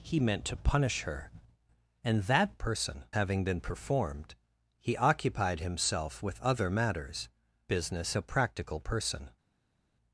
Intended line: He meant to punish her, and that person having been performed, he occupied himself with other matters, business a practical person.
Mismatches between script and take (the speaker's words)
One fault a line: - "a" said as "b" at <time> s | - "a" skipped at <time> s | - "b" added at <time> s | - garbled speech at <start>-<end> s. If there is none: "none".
none